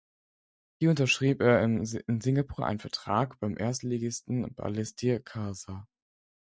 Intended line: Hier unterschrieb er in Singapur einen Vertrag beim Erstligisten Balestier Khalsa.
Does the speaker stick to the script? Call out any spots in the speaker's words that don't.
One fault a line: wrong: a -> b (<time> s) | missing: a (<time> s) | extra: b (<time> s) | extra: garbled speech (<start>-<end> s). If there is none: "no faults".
no faults